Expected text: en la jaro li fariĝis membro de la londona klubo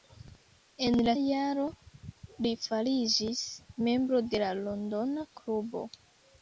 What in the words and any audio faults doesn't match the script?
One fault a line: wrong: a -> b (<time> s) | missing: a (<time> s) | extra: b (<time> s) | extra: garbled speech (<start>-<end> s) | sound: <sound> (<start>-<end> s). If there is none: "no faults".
no faults